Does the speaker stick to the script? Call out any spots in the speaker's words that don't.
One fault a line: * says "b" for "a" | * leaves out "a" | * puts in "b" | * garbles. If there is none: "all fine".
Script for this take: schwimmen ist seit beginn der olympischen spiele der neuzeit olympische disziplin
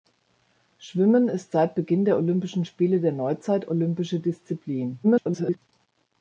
* garbles